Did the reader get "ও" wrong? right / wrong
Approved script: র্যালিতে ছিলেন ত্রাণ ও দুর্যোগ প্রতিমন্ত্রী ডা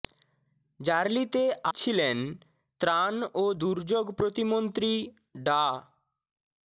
right